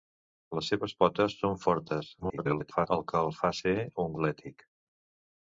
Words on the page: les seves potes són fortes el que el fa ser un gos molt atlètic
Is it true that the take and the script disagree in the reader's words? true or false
true